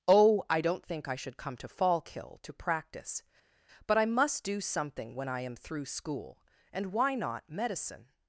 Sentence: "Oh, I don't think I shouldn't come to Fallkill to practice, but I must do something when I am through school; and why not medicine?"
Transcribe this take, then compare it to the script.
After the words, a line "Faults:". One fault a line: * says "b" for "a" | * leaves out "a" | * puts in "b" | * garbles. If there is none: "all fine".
"Oh, I don't think I should come to Fallkill to practice, but I must do something when I am through school; and why not medicine?"
Faults:
* says "should" for "shouldn't"